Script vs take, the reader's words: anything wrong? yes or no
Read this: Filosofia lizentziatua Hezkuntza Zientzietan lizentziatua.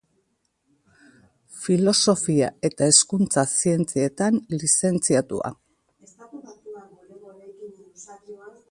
yes